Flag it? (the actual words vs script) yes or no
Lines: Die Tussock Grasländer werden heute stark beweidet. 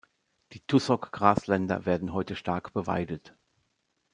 no